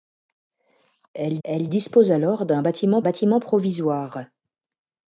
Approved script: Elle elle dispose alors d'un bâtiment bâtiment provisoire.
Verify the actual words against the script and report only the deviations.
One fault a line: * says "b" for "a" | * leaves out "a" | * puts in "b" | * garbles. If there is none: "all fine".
all fine